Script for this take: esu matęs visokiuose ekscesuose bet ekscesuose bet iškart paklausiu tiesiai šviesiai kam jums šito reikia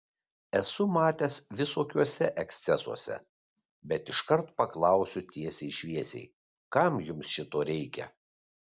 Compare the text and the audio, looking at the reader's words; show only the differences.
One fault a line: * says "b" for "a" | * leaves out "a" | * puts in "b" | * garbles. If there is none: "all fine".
* leaves out "ekscesuose bet"